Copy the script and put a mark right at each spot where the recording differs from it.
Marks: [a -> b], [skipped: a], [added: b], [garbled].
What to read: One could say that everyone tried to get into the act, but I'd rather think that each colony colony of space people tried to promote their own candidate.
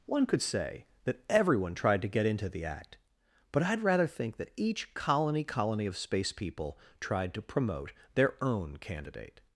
One could say that everyone tried to get into the act, but I'd rather think that each colony colony of space people tried to promote their own candidate.